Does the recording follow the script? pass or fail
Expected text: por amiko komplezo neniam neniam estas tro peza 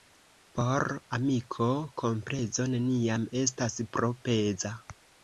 fail